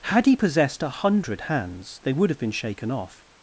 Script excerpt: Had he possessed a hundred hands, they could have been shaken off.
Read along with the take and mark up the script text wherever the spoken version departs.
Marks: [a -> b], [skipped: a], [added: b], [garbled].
Had he possessed a hundred hands, they [could -> would] have been shaken off.